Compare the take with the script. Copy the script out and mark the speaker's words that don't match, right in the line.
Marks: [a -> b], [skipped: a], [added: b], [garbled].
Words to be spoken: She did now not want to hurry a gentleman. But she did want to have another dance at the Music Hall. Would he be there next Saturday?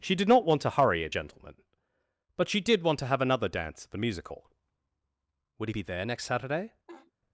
She did [skipped: now] not want to hurry a gentleman. But she did want to have another dance at the Music Hall. Would he be there next Saturday?